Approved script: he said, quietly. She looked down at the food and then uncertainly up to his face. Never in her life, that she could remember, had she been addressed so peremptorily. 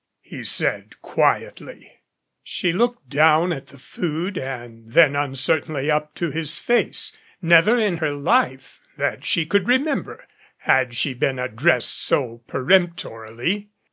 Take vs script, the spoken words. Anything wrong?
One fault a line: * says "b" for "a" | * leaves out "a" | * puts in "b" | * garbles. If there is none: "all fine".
all fine